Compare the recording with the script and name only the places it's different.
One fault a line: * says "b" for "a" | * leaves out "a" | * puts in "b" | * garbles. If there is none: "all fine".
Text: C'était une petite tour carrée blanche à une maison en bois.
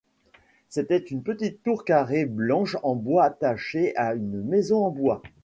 * puts in "en bois attachée"